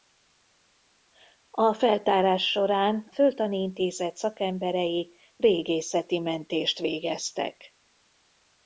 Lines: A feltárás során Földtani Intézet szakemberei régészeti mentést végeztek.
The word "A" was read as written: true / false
true